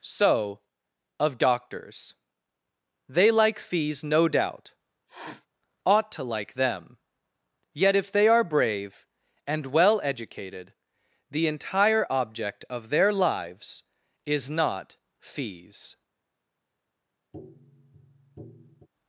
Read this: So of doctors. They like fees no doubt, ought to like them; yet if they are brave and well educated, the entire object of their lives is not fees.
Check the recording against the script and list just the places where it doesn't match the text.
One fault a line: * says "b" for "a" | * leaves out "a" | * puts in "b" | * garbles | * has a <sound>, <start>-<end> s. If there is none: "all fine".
* has a sniff, 5.1-5.5 s
* has a tap, 17.3-18.9 s